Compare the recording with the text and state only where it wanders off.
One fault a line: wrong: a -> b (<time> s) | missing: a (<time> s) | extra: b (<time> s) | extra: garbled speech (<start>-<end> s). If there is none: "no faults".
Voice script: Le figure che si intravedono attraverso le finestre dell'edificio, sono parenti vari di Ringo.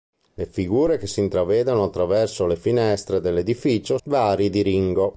missing: sono parenti (4.0 s)